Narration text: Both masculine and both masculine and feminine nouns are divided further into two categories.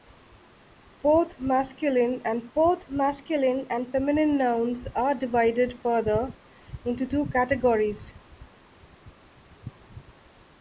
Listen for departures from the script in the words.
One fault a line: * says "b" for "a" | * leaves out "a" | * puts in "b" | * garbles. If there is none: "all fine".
all fine